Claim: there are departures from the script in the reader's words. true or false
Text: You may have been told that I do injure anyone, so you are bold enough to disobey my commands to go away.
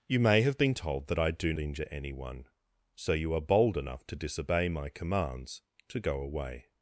false